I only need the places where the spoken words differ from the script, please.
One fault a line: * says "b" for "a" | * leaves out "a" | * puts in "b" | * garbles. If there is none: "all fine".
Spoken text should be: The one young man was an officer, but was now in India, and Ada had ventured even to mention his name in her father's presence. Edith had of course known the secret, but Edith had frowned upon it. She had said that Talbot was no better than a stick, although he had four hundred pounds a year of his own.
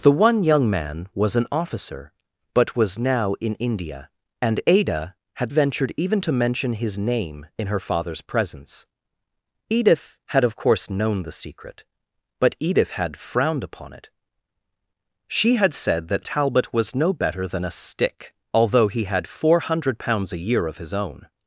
all fine